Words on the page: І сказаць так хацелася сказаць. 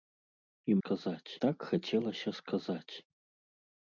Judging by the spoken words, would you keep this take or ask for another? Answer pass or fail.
pass